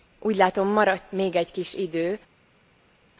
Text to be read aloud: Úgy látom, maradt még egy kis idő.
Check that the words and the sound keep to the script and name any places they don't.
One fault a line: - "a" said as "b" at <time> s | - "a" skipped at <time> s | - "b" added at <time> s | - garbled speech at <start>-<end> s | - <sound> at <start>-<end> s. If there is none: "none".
none